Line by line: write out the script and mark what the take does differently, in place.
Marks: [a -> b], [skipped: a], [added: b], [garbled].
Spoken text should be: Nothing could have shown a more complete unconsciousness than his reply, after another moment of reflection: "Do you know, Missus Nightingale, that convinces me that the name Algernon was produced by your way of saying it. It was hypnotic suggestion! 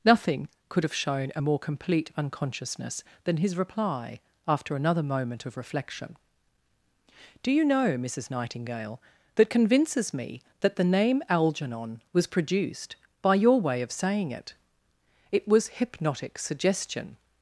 Nothing could have shown a more complete unconsciousness than his reply, after another moment of reflection: "Do you know, Missus Nightingale, that convinces me that the name Algernon was produced by your way of saying it. It was hypnotic suggestion!